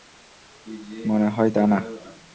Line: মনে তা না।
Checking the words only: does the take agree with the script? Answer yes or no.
no